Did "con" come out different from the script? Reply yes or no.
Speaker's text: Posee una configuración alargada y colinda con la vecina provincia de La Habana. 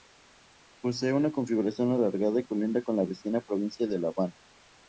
no